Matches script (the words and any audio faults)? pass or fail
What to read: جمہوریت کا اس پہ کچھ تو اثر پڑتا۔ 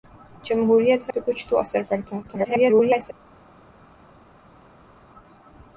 fail